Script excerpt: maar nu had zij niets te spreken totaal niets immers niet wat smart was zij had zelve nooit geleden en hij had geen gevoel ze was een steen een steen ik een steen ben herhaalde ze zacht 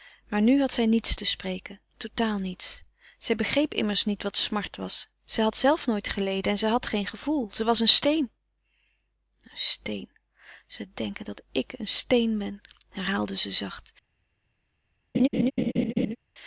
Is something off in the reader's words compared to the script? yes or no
yes